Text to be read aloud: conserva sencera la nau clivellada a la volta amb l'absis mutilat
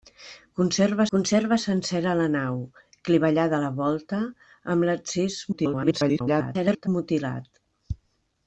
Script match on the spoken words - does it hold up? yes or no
no